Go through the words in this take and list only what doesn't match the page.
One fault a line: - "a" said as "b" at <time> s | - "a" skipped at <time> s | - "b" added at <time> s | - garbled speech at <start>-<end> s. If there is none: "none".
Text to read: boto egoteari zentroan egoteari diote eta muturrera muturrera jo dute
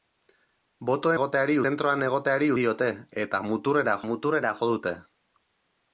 none